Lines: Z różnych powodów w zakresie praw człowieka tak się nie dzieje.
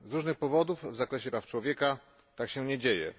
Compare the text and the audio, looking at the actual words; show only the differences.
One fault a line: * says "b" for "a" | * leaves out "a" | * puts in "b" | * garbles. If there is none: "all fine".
all fine